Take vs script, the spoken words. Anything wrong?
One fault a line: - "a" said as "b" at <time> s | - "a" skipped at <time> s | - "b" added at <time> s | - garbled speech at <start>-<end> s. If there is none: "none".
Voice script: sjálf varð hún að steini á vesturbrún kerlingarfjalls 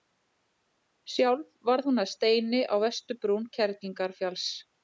none